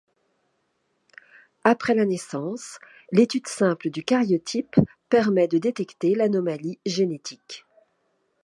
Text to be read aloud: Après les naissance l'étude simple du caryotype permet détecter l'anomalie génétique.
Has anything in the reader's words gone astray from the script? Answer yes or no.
yes